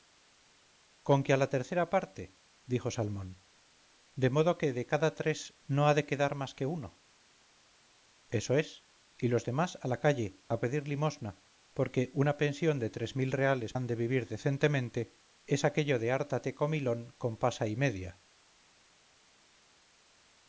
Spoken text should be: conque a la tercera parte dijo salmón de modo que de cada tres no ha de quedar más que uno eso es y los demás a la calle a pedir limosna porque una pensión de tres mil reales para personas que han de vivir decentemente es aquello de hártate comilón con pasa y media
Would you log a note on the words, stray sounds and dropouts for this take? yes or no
yes